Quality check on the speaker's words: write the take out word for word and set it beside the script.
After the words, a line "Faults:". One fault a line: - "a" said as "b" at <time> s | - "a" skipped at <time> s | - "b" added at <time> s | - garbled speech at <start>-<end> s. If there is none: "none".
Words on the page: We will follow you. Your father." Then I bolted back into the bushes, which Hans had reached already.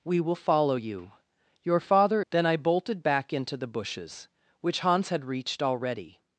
We will follow you. Your father." Then I bolted back into the bushes, which Hans had reached already.
Faults:
none